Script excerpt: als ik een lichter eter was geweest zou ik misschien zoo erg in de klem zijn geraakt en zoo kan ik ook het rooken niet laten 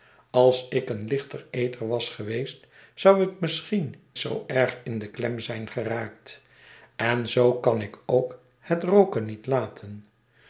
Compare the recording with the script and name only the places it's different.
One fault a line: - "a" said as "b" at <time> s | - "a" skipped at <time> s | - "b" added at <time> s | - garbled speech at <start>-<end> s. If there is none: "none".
none